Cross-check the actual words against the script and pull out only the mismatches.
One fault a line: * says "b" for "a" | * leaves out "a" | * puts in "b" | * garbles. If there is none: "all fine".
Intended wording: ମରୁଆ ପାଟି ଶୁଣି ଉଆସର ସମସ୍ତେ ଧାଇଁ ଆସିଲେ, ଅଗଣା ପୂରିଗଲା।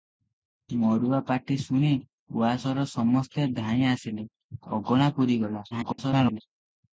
* garbles